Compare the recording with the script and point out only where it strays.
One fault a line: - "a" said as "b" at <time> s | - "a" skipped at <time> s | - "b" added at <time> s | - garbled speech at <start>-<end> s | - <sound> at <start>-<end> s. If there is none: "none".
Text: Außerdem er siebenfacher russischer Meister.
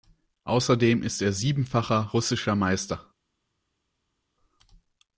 - "ist" added at 1.0 s